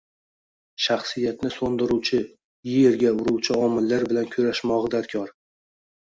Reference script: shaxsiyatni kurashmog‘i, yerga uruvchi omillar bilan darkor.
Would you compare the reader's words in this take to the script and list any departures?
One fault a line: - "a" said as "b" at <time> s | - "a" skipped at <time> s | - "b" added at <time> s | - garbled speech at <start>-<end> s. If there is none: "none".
- "kurashmog‘i" said as "so‘ndiruvchi" at 1.6 s
- "kurashmog‘i" added at 4.4 s